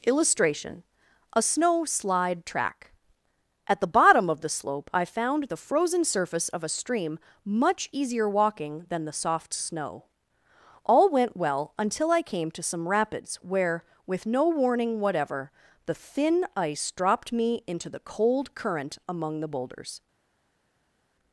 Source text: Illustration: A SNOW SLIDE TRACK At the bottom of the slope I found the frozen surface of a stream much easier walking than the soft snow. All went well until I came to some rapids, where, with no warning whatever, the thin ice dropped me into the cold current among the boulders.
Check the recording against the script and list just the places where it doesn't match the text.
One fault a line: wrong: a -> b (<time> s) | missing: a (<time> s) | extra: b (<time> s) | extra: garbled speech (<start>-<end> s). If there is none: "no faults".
no faults